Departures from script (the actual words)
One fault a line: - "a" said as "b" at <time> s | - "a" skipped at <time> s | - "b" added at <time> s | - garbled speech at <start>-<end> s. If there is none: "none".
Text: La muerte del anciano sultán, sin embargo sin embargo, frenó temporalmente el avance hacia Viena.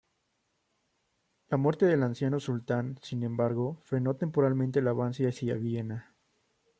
- "sin embargo" skipped at 3.8 s